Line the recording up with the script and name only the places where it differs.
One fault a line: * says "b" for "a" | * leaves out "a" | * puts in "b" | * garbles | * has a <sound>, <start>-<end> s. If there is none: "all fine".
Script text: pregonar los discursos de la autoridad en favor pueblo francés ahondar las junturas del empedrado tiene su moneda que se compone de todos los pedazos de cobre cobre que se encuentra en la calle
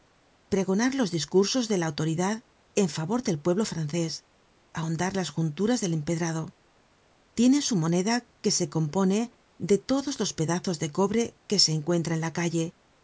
* puts in "del"
* leaves out "cobre"